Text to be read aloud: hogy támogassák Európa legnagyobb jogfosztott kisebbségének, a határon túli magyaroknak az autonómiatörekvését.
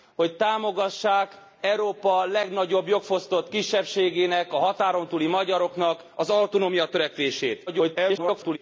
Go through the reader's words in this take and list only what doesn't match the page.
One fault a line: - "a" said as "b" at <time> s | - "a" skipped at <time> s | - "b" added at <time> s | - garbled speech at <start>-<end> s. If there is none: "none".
- garbled speech at 7.7-8.6 s